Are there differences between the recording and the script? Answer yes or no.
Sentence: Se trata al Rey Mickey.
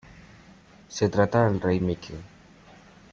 yes